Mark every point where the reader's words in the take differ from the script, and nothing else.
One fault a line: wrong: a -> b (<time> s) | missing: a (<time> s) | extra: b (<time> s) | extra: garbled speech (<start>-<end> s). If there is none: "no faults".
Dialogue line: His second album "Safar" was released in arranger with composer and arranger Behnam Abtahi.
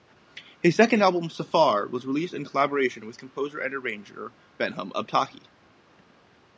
wrong: arranger -> collaboration (2.5 s)